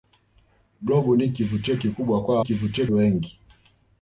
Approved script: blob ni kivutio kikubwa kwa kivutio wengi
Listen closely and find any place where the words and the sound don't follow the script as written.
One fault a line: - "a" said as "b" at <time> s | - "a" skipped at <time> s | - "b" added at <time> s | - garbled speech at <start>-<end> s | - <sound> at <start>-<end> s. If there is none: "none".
none